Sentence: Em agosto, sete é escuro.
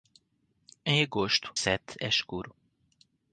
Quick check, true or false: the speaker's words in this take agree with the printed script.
true